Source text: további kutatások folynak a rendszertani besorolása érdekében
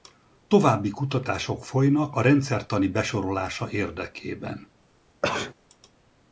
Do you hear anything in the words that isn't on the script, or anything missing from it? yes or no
no